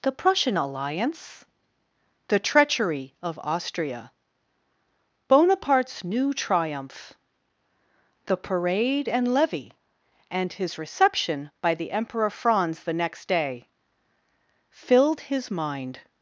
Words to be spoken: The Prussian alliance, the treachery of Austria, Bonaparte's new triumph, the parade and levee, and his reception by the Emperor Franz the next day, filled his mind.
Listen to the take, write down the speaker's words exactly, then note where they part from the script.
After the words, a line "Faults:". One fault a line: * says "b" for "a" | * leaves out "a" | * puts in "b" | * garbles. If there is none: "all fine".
The Prussian alliance, the treachery of Austria, Bonaparte's new triumph, the parade and levee, and his reception by the Emperor Franz the next day, filled his mind.
Faults:
all fine